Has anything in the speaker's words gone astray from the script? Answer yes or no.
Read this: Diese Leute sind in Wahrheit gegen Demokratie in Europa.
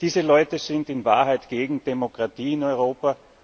no